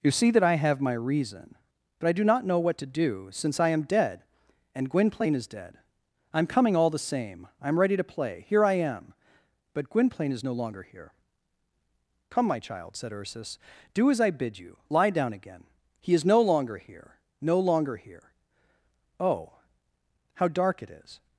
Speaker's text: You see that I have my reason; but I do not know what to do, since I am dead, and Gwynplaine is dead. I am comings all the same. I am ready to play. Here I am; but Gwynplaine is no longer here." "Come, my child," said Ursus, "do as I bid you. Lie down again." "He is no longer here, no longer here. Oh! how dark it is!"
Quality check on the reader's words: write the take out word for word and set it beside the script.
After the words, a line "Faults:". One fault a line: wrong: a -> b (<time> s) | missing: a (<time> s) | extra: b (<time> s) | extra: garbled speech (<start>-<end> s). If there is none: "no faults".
You see that I have my reason; but I do not know what to do, since I am dead, and Gwynplaine is dead. I am coming all the same. I am ready to play. Here I am; but Gwynplaine is no longer here." "Come, my child," said Ursus, "do as I bid you. Lie down again." "He is no longer here, no longer here. Oh! how dark it is!"
Faults:
wrong: comings -> coming (6.5 s)